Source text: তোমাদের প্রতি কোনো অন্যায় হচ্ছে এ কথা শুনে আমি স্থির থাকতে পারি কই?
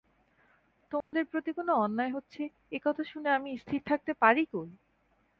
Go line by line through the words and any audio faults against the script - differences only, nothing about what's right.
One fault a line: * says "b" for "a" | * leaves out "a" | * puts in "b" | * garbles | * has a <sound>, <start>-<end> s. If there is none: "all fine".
* has a dropout, 1.0-1.1 s